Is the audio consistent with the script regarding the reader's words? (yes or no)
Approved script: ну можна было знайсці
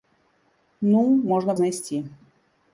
no